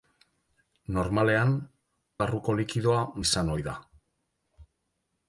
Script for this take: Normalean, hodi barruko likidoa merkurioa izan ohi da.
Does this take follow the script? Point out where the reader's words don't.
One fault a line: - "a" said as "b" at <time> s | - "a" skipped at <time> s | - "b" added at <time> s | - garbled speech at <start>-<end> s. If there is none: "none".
- "hodi" skipped at 1.5 s
- "merkurioa" skipped at 3.1 s